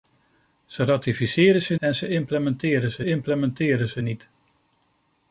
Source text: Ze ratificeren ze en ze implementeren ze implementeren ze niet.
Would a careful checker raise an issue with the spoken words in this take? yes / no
no